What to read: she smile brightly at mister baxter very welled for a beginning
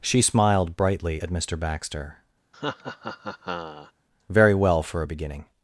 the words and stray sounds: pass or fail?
fail